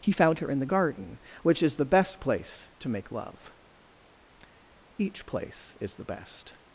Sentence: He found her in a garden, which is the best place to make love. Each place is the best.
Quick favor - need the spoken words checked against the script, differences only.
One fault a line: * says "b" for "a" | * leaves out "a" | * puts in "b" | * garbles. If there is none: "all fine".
* says "the" for "a"